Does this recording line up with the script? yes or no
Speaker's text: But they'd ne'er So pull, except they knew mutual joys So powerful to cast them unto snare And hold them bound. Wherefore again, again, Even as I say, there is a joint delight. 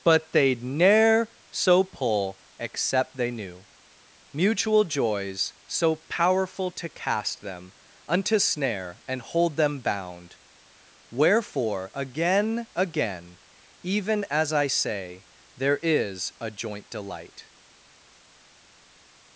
yes